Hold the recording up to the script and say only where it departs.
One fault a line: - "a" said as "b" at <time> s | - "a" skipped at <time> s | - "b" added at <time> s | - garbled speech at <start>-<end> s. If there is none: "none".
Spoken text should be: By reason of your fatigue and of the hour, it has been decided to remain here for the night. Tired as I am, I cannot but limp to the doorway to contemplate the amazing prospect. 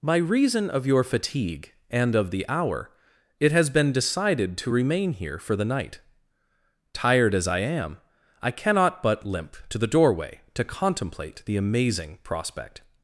none